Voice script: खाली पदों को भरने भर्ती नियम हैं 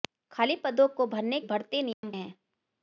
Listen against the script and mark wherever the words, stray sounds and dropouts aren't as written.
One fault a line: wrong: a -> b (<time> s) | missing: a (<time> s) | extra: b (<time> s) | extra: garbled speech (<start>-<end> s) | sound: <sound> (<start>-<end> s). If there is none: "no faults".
sound: dropout (1.9-2.0 s)